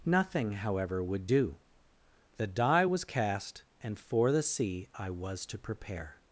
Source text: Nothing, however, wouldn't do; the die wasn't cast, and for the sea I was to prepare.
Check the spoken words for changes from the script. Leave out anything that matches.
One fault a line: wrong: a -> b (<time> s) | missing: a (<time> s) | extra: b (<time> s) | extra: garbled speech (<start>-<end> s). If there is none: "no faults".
wrong: wouldn't -> would (1.0 s)
wrong: wasn't -> was (2.8 s)